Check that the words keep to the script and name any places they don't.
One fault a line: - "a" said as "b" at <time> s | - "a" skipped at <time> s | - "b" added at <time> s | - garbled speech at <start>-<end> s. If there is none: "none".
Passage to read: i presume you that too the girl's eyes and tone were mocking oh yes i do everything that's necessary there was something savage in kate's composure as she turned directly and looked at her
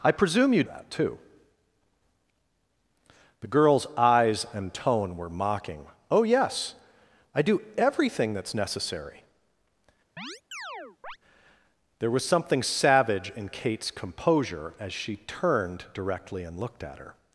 none